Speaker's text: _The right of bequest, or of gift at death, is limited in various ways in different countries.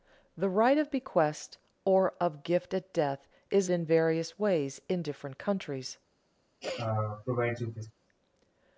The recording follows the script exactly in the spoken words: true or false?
false